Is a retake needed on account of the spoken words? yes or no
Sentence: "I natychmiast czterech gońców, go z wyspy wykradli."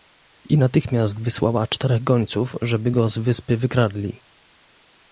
yes